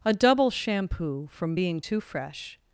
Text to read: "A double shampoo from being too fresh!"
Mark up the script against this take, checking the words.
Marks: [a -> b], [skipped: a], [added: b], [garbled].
"A double shampoo from being too fresh!"